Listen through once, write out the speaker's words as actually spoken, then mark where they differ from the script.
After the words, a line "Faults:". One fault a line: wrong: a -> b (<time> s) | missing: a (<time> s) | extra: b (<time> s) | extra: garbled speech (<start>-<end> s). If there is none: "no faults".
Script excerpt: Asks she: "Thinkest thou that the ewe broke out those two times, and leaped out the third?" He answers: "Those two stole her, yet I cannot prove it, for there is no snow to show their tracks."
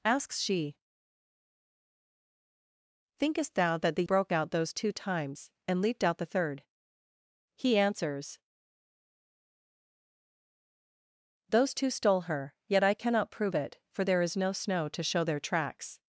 Asks she: "Thinkest thou that the broke out those two times, and leaped out the third?" He answers: "Those two stole her, yet I cannot prove it, for there is no snow to show their tracks."
Faults:
missing: ewe (4.0 s)